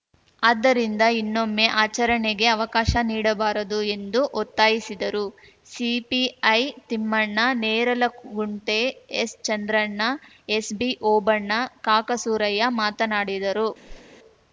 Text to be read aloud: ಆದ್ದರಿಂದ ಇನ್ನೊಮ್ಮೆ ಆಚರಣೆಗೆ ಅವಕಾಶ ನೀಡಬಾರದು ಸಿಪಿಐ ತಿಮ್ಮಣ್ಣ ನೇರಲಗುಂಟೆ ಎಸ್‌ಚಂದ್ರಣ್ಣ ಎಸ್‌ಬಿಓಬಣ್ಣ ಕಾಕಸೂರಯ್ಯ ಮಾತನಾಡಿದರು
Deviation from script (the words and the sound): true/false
true